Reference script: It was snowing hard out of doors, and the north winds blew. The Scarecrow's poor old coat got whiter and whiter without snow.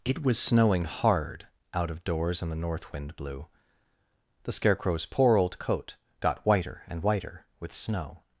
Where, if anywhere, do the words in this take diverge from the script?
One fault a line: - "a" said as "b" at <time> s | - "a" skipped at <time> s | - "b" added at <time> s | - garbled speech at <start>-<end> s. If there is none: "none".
- "winds" said as "wind" at 2.9 s
- "without" said as "with" at 7.6 s